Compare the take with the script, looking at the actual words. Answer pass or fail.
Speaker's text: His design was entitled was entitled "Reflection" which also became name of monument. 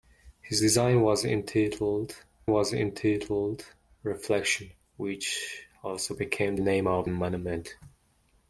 pass